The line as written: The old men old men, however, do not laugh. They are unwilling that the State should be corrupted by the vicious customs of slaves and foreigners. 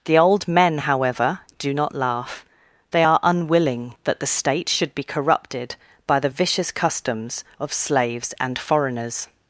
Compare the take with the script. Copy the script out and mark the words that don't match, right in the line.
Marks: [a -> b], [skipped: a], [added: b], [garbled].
The old men [skipped: old men,] however, do not laugh. They are unwilling that the State should be corrupted by the vicious customs of slaves and foreigners.